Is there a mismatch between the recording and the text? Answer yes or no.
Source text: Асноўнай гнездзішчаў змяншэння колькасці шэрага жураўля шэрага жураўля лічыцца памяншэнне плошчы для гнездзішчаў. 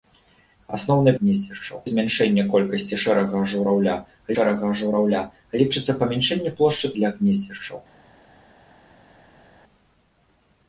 no